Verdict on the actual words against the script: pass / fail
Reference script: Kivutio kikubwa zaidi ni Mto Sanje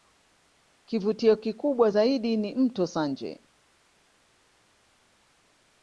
pass